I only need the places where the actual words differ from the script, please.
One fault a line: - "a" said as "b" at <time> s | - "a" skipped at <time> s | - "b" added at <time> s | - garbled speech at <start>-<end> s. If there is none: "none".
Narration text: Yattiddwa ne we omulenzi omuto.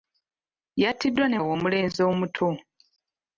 none